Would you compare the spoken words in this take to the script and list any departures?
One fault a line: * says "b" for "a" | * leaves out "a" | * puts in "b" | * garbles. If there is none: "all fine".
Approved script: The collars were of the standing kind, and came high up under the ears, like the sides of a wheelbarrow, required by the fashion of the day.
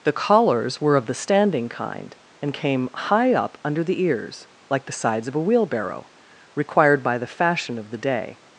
all fine